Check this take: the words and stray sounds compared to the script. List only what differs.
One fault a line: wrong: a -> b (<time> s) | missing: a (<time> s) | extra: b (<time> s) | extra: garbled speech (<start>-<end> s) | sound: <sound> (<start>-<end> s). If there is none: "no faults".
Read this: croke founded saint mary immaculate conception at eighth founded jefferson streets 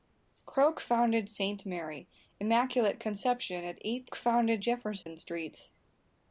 sound: dropout (5.0-5.1 s)